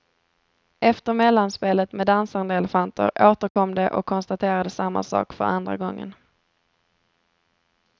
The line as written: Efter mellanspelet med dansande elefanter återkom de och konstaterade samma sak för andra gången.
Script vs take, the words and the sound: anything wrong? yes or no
yes